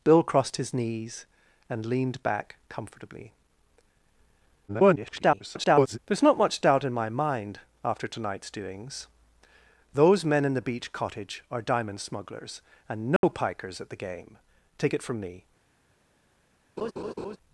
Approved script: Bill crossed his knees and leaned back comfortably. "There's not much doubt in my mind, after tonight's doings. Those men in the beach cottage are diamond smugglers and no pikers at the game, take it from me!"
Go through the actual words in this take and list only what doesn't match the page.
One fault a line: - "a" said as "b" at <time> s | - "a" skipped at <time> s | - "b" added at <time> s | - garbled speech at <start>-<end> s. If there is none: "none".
- garbled speech at 4.7-6.0 s